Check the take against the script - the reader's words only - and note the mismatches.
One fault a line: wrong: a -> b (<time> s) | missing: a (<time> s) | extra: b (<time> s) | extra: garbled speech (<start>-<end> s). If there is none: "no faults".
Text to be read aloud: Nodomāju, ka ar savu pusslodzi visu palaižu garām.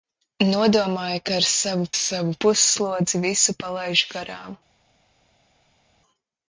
extra: savu (1.9 s)